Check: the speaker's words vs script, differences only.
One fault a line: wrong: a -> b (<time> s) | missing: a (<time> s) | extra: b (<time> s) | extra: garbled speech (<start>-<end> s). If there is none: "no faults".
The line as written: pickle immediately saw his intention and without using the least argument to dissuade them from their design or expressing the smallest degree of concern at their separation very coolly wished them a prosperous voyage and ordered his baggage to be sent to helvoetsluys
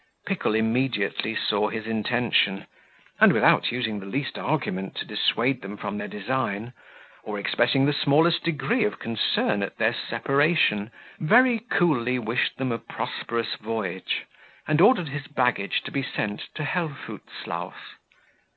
no faults